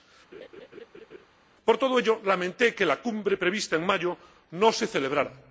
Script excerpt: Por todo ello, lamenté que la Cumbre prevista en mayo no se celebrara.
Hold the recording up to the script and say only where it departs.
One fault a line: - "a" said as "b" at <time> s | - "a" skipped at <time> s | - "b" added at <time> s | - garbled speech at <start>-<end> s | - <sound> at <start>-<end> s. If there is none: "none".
- laugh at 0.3-1.3 s